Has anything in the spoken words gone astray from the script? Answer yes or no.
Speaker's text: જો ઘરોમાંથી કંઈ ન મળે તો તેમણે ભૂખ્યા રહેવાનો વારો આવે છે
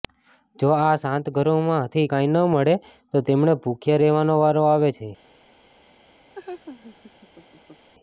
yes